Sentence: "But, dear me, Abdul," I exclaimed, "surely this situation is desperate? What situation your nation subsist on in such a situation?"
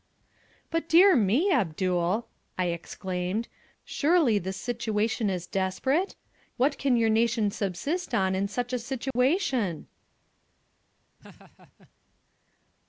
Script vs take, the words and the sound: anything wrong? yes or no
yes